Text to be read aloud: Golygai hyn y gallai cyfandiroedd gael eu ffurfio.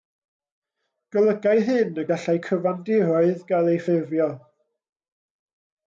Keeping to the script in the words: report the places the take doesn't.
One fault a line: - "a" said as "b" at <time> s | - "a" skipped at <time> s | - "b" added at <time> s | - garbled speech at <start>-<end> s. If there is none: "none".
none